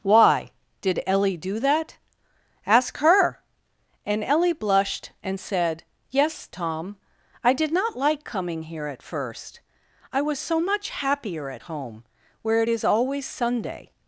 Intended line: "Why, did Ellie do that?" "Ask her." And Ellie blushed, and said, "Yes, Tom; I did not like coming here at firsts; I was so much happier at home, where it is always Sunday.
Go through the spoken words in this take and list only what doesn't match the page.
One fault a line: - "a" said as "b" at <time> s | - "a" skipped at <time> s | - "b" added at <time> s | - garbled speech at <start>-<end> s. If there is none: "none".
- "firsts" said as "first" at 9.0 s